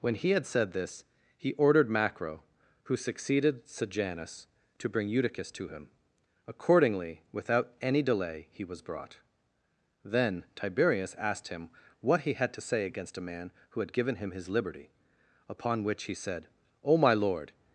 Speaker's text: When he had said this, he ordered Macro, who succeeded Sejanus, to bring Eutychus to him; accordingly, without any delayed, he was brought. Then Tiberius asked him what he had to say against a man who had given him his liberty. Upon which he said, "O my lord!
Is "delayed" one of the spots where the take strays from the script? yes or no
yes